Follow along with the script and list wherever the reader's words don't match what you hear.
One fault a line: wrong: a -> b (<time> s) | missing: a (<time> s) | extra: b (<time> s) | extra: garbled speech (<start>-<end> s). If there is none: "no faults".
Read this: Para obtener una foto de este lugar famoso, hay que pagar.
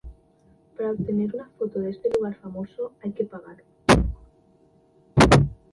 no faults